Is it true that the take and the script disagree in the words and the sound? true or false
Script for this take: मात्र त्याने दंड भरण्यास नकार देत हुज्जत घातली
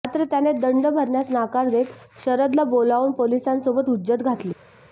true